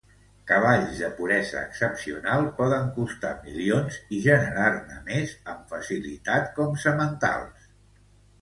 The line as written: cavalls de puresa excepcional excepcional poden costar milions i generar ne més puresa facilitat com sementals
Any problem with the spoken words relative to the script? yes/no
yes